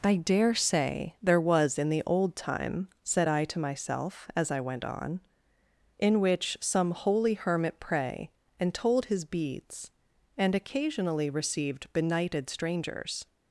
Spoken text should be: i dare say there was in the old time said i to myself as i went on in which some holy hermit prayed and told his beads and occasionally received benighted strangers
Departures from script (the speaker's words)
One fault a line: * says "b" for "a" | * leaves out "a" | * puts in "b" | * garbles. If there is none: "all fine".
* says "pray" for "prayed"